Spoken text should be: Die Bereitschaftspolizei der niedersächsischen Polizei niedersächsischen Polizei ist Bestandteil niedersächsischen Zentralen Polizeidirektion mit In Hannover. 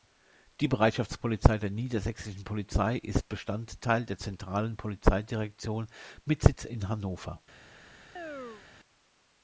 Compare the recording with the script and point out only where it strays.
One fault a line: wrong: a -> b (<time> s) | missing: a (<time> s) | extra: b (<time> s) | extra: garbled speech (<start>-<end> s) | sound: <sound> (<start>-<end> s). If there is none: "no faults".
missing: niedersächsischen Polizei (3.0 s)
wrong: niedersächsischen -> der (4.1 s)
extra: Sitz (6.4 s)
sound: chirp (8.2-8.7 s)